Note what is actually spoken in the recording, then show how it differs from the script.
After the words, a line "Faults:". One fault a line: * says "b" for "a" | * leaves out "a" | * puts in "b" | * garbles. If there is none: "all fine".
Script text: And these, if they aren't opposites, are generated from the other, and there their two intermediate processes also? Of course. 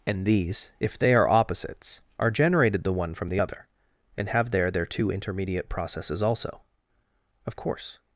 And these, if they are opposites, are generated the one from the other, and have there their two intermediate processes also? Of course.
Faults:
* says "are" for "aren't"
* puts in "the one"
* puts in "have"